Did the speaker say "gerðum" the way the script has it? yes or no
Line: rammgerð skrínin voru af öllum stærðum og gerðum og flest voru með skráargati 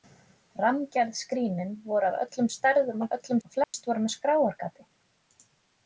no